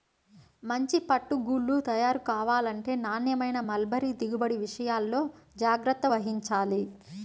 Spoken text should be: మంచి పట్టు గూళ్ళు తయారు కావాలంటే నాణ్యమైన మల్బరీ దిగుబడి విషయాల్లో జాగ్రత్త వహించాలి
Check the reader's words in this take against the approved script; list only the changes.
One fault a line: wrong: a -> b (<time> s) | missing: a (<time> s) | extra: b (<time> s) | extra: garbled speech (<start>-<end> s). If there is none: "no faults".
no faults